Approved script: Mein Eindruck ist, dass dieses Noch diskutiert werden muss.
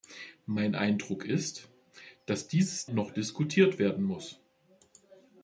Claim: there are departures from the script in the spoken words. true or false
false